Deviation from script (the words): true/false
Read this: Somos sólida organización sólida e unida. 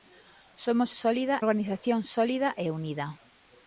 false